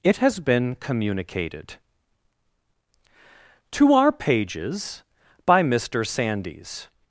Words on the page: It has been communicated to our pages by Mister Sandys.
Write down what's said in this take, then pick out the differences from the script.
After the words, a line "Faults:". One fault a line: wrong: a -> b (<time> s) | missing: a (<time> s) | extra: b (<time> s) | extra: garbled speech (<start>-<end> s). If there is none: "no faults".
It has been communicated to our pages by Mister Sandys.
Faults:
no faults